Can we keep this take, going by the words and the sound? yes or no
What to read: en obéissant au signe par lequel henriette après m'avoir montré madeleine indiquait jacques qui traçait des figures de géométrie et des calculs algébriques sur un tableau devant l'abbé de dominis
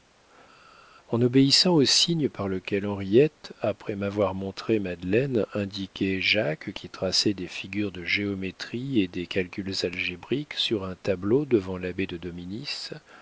yes